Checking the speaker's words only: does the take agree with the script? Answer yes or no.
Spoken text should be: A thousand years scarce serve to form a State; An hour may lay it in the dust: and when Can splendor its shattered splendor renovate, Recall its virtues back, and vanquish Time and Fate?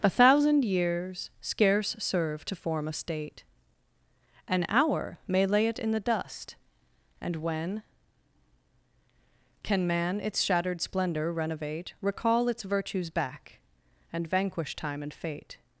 no